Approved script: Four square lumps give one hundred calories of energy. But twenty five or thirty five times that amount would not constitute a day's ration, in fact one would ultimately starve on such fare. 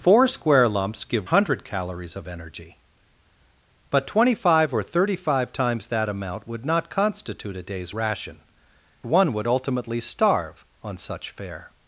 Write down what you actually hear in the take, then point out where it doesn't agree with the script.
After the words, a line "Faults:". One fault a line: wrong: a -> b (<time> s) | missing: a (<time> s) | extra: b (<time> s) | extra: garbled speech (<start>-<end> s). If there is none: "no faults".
Four square lumps give hundred calories of energy. But twenty five or thirty five times that amount would not constitute a day's ration, one would ultimately starve on such fare.
Faults:
missing: one (1.3 s)
missing: in fact (8.4 s)